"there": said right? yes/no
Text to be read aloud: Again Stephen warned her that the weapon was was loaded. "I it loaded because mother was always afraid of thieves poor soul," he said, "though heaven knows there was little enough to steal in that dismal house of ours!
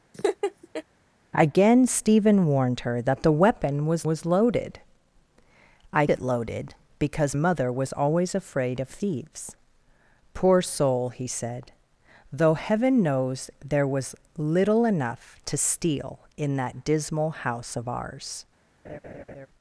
yes